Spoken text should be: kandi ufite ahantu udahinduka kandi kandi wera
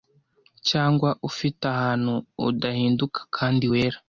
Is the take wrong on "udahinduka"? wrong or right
right